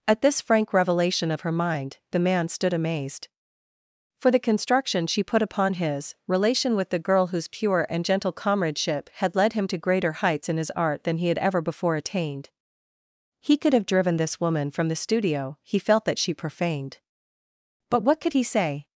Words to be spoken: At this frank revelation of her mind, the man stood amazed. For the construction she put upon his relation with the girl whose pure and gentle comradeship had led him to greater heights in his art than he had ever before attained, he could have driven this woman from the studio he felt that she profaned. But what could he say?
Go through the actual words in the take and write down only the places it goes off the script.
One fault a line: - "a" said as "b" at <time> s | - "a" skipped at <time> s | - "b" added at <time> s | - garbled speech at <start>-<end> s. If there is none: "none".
none